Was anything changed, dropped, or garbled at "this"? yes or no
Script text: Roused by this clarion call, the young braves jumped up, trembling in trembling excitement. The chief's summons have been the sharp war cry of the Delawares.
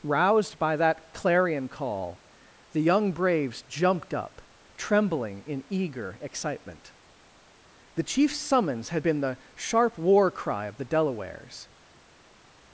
yes